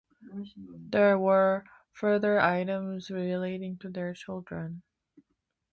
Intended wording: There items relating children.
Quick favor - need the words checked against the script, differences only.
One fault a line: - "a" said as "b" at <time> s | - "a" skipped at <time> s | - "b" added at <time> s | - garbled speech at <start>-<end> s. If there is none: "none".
- "were further" added at 1.2 s
- "to their" added at 3.8 s